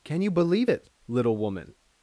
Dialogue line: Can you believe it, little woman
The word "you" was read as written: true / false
true